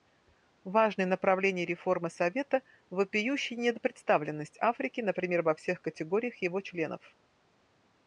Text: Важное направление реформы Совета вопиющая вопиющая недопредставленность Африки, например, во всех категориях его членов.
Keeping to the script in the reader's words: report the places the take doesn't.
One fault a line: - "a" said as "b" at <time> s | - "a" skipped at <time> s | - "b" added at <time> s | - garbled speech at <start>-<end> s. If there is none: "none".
- "вопиющая" skipped at 3.5 s